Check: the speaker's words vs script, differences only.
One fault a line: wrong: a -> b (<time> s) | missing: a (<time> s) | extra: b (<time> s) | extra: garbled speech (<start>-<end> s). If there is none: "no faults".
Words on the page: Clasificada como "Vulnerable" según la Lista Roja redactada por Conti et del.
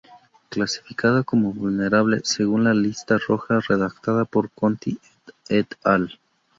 wrong: del -> al (5.8 s)